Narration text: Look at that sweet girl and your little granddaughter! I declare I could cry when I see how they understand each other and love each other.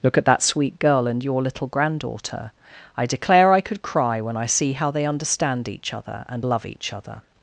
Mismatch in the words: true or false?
false